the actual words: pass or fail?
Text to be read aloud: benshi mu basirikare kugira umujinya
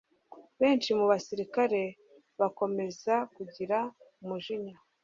fail